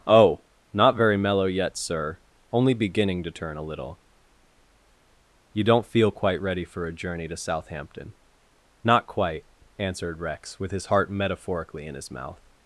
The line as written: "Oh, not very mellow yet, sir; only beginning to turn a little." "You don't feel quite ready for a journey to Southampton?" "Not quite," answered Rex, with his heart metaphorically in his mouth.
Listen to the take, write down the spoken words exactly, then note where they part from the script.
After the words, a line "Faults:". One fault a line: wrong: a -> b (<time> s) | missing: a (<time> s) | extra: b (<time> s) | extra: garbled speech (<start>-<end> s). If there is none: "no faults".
"Oh, not very mellow yet, sir; only beginning to turn a little." "You don't feel quite ready for a journey to Southampton?" "Not quite," answered Rex, with his heart metaphorically in his mouth.
Faults:
no faults